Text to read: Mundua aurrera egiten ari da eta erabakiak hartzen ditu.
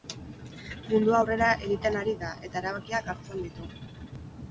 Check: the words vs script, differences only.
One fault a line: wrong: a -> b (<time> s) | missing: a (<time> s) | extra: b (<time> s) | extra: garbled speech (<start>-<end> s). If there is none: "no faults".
no faults